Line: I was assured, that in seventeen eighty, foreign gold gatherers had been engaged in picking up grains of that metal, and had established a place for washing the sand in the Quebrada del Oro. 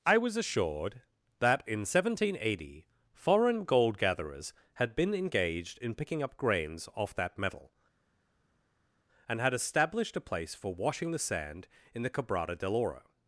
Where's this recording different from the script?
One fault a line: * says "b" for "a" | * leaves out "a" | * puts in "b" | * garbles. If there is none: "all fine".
* says "off" for "of"